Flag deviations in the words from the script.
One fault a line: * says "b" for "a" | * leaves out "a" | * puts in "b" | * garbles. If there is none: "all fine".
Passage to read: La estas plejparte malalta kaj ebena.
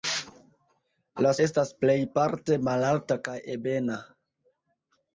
all fine